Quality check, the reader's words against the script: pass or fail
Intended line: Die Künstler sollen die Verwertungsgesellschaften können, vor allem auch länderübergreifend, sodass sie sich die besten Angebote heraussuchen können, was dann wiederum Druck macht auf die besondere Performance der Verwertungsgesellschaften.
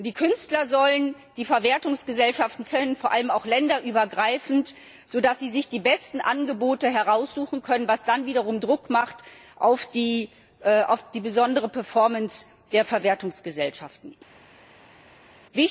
pass